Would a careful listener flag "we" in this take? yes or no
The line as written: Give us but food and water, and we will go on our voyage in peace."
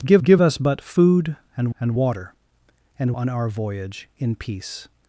yes